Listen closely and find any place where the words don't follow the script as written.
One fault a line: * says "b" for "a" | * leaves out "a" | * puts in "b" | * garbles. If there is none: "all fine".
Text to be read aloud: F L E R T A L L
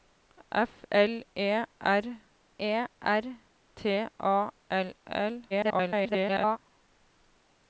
* puts in "E R"
* garbles